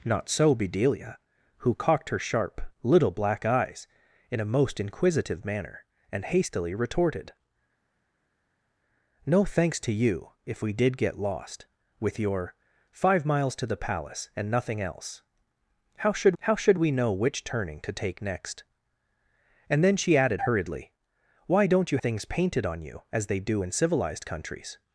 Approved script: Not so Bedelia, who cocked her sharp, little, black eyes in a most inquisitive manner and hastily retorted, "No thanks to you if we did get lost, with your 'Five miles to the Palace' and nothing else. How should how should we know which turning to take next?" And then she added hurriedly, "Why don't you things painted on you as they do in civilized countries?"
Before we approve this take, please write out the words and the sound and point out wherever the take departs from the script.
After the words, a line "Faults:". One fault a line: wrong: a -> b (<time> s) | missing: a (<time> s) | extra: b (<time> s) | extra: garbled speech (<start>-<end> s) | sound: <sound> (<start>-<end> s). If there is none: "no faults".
Not so Bedelia, who cocked her sharp, little, black eyes in a most inquisitive manner and hastily retorted, "No thanks to you if we did get lost, with your 'Five miles to the Palace' and nothing else. How should how should we know which turning to take next?" And then she added hurriedly, "Why don't you things painted on you as they do in civilized countries?"
Faults:
no faults